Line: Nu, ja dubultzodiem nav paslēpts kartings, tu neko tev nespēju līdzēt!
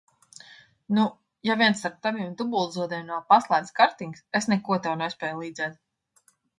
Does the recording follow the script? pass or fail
fail